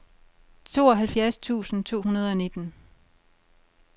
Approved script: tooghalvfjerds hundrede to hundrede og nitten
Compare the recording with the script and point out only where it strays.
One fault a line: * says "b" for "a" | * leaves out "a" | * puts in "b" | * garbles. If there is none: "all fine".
* says "tusind" for "hundrede"